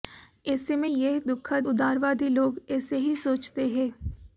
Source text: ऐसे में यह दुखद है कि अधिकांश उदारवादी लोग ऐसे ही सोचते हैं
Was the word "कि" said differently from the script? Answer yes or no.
yes